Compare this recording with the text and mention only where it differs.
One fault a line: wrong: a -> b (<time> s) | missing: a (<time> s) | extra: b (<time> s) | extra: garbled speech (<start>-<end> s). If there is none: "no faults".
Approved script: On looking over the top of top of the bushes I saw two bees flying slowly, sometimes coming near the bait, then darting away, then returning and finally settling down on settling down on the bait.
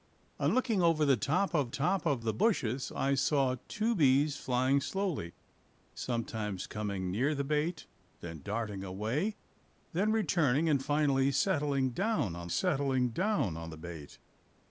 no faults